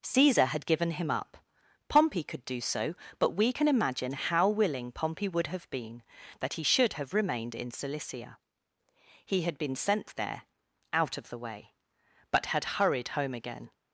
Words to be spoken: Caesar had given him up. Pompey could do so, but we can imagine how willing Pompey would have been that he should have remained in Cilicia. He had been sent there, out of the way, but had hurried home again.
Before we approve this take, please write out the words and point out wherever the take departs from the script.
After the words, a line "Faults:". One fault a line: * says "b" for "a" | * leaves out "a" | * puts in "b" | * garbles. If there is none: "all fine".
Caesar had given him up. Pompey could do so, but we can imagine how willing Pompey would have been that he should have remained in Cilicia. He had been sent there, out of the way, but had hurried home again.
Faults:
all fine